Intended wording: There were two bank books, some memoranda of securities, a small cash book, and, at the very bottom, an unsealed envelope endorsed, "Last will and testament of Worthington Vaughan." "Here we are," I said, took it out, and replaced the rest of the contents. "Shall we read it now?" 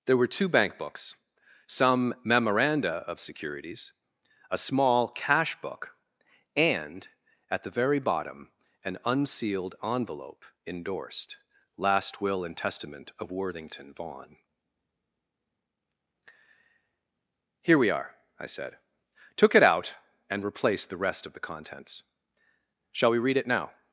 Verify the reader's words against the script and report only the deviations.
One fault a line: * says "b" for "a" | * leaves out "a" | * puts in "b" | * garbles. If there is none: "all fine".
all fine